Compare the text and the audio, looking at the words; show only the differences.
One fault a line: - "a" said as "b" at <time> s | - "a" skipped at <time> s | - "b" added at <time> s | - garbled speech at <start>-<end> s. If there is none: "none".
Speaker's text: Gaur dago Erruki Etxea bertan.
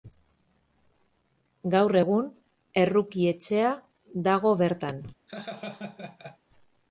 - "dago" said as "egun" at 2.0 s
- "dago" added at 4.3 s